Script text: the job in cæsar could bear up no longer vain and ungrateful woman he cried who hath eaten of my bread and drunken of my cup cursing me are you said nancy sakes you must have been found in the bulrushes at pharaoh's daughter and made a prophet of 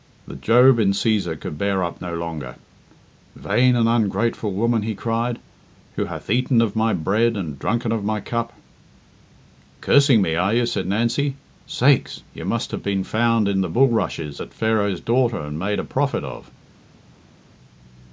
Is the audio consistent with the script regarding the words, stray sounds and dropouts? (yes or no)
yes